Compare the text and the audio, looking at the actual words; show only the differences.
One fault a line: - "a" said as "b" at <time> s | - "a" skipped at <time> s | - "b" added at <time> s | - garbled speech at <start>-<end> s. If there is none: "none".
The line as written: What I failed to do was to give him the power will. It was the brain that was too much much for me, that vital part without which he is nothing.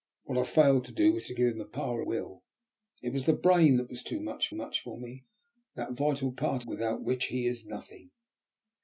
none